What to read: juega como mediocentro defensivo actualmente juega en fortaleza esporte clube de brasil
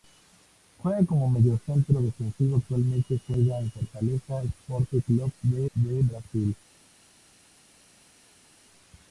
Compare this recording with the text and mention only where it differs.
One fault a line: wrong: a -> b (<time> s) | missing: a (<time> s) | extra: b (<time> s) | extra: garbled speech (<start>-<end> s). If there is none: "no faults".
extra: de (5.7 s)